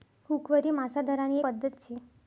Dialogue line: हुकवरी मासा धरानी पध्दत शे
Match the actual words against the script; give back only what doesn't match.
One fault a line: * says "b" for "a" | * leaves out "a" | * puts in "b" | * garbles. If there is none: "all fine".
all fine